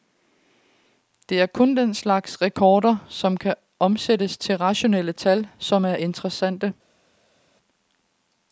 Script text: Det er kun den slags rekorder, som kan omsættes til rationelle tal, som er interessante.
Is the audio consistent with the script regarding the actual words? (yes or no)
yes